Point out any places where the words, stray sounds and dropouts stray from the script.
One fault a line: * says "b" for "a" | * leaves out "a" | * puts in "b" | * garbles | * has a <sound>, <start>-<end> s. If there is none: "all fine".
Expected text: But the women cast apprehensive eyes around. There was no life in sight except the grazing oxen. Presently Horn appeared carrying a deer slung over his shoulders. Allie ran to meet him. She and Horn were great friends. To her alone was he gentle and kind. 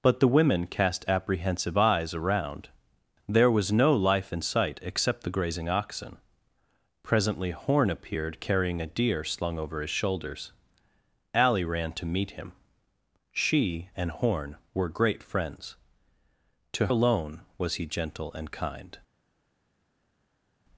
* leaves out "her"